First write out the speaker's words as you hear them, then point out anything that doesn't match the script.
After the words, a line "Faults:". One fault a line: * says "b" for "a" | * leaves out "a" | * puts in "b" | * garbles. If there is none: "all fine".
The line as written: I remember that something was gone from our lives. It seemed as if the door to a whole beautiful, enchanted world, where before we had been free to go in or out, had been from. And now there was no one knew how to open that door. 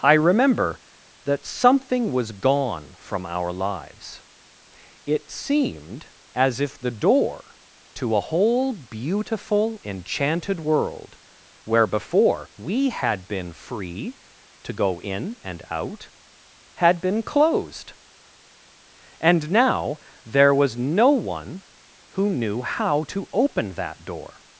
I remember that something was gone from our lives. It seemed as if the door to a whole beautiful, enchanted world, where before we had been free to go in and out, had been closed. And now there was no one who knew how to open that door.
Faults:
* says "and" for "or"
* says "closed" for "from"
* puts in "who"